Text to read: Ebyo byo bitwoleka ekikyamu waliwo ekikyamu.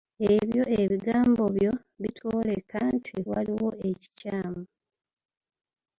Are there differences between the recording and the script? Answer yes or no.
yes